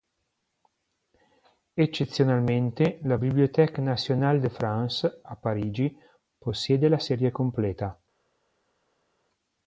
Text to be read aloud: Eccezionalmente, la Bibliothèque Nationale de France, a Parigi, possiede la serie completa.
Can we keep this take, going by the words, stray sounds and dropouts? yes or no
yes